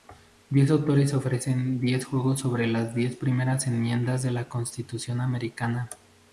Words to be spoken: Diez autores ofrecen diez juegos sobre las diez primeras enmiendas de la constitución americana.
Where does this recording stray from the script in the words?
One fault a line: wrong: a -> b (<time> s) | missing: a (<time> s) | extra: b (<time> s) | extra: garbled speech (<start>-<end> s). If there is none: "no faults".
no faults